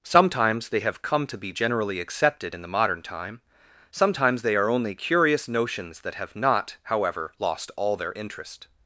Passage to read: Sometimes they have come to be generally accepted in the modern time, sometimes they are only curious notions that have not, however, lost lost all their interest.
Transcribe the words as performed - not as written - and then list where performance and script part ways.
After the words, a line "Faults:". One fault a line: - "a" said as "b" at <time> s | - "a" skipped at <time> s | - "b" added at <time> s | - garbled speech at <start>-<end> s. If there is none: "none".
Sometimes they have come to be generally accepted in the modern time, sometimes they are only curious notions that have not, however, lost all their interest.
Faults:
- "lost" skipped at 7.7 s